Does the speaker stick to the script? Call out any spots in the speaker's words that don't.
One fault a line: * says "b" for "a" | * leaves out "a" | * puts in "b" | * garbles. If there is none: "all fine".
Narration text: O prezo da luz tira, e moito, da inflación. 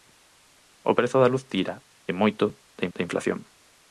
* puts in "da"